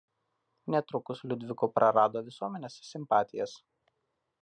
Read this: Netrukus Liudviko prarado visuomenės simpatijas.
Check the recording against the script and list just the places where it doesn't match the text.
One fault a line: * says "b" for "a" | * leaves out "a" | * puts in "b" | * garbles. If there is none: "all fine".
all fine